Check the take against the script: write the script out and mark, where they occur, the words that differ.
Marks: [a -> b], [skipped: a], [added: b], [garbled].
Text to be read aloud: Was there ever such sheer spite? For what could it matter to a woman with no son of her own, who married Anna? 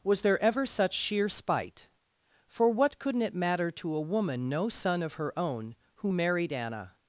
Was there ever such sheer spite? For what [could -> couldn't] it matter to a woman [skipped: with] no son of her own, who married Anna?